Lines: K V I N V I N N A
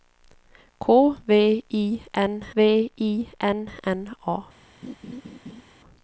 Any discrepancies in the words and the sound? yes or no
yes